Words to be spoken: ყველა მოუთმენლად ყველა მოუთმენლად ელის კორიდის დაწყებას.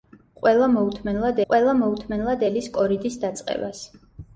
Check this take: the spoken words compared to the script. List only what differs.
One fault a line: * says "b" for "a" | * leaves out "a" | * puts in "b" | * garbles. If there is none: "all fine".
all fine